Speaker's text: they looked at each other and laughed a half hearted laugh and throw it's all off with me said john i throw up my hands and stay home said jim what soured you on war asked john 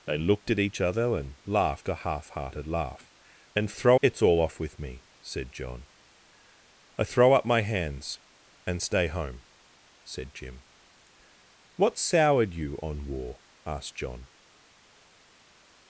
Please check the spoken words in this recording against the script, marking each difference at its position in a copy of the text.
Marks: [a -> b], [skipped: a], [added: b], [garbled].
they looked at each other and laughed a half hearted laugh and throw it's all off with me said john i throw up my hands and stay home said jim what soured you on war asked john